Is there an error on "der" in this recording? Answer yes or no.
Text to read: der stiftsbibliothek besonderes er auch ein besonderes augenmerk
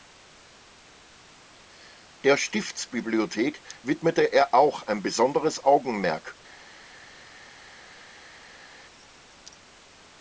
no